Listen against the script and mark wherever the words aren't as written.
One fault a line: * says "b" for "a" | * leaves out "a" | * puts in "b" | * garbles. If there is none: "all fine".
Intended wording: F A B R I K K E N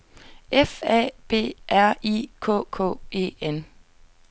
all fine